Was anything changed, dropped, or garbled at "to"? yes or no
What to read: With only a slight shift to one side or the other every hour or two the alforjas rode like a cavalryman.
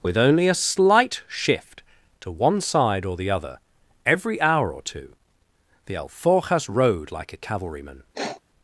no